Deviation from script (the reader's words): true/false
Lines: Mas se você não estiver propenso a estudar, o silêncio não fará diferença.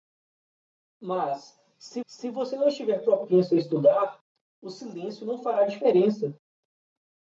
true